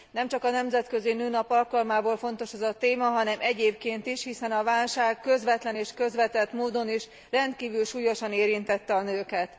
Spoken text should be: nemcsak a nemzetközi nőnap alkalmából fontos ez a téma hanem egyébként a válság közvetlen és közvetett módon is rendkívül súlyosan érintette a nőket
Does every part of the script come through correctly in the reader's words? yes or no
no